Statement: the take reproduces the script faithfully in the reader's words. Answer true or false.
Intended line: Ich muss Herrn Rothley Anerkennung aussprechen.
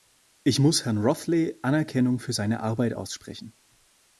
false